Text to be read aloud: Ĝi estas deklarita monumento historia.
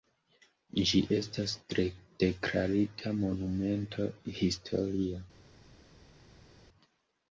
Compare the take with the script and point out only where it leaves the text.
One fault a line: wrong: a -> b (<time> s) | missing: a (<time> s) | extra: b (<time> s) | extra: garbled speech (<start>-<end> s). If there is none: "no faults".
no faults